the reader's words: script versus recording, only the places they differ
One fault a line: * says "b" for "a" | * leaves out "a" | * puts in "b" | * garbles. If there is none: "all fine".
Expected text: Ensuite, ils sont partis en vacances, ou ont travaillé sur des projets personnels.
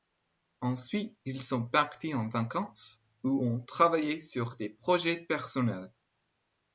all fine